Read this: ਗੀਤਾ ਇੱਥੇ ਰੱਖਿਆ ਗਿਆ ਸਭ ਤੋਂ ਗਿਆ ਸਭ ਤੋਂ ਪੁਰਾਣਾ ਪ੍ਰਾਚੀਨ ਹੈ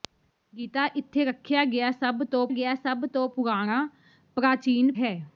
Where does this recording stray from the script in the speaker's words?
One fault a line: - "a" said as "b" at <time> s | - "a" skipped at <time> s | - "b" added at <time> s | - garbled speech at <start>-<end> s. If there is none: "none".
none